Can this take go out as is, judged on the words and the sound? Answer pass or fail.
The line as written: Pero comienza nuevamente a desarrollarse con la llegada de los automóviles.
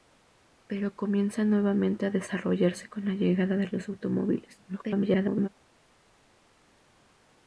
fail